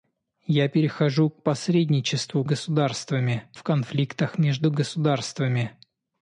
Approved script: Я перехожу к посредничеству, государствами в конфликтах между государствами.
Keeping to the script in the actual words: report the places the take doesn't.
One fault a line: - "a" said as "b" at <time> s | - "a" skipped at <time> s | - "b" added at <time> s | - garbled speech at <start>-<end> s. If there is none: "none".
none